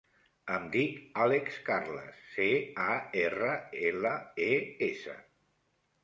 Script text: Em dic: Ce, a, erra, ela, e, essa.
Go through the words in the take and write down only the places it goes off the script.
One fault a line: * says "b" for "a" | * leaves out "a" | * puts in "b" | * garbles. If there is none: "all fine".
* puts in "Àlex Carles"